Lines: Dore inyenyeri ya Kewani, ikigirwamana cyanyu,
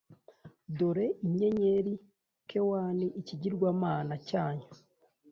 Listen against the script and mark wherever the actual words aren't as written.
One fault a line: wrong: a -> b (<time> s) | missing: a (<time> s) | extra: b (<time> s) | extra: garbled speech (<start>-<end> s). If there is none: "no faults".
missing: ya (1.9 s)